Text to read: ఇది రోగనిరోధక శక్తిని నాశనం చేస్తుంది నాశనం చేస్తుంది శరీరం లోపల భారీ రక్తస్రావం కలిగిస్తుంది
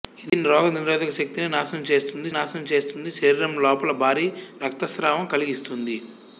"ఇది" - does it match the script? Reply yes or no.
yes